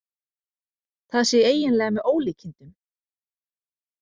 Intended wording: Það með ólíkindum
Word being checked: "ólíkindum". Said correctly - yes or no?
yes